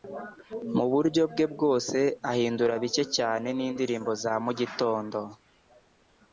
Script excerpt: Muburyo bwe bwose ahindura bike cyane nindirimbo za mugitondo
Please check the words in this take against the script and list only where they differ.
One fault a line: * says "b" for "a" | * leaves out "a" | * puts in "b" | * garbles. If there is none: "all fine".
all fine